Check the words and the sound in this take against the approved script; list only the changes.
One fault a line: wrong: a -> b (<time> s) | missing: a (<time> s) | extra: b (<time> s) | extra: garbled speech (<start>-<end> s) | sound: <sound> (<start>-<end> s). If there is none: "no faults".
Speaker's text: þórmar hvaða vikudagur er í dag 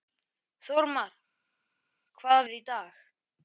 missing: vikudagur (2.5 s)